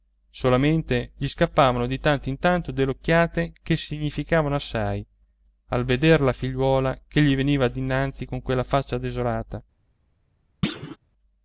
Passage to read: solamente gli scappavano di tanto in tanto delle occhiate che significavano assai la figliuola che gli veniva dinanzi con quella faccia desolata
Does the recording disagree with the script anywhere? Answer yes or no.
yes